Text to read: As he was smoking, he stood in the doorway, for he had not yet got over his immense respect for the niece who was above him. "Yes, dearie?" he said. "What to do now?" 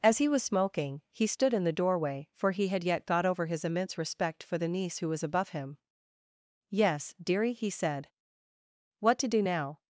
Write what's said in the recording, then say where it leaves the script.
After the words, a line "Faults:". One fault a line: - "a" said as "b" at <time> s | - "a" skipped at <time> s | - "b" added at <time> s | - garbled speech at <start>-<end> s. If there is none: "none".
As he was smoking, he stood in the doorway, for he had yet got over his immense respect for the niece who was above him. "Yes, dearie?" he said. "What to do now?"
Faults:
- "not" skipped at 2.8 s